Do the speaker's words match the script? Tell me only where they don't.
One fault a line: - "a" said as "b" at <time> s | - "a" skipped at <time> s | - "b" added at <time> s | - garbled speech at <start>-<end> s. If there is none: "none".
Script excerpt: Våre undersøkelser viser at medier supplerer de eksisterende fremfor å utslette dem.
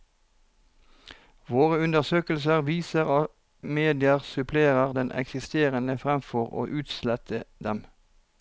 none